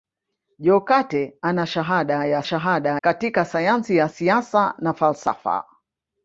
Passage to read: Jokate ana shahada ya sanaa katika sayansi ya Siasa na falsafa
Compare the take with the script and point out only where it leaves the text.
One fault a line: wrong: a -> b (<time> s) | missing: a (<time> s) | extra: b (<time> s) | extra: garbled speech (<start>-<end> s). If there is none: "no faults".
wrong: sanaa -> shahada (2.4 s)